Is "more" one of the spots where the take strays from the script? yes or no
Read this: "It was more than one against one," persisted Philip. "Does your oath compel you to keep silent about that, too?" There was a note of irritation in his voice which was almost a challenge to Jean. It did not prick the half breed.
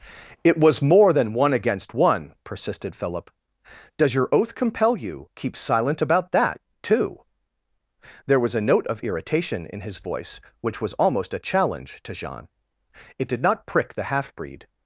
no